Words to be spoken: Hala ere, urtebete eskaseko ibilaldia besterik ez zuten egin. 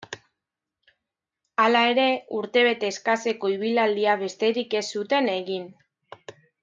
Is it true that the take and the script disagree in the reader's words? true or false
false